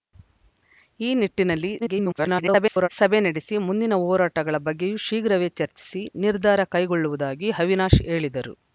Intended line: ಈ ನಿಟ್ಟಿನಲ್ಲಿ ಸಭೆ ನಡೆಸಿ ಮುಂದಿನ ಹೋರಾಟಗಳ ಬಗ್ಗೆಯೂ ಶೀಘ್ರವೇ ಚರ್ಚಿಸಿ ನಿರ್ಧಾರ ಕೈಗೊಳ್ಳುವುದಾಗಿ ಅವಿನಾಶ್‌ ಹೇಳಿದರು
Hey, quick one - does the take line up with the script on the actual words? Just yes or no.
no